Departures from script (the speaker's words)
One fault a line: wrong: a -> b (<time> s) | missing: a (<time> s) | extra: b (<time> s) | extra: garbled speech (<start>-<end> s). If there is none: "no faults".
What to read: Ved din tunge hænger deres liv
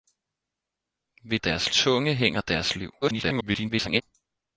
wrong: din -> deres (1.4 s)
extra: garbled speech (3.0-4.0 s)